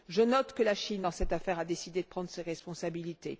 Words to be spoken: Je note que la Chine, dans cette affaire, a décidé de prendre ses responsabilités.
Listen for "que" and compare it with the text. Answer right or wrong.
right